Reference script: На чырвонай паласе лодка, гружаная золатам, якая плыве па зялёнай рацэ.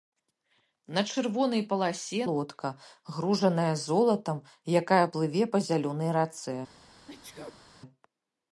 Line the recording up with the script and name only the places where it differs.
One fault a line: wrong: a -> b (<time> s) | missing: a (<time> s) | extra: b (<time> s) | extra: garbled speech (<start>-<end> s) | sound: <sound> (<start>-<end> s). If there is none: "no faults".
sound: sneeze (7.1-7.6 s)